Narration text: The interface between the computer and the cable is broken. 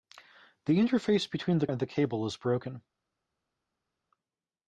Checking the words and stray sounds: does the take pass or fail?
fail